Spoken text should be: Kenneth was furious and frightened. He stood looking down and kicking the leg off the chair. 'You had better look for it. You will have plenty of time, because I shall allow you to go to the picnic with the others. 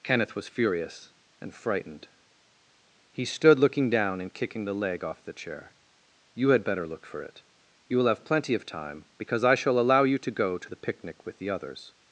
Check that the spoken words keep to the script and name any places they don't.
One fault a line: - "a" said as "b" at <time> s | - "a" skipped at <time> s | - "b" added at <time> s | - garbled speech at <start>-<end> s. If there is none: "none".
none